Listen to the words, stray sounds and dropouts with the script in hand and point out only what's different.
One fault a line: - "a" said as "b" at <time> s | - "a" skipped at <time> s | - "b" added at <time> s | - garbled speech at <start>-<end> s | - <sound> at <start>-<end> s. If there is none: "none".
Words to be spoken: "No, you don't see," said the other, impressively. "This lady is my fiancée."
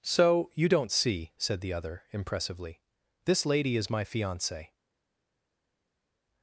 - "No" said as "So" at 0.0 s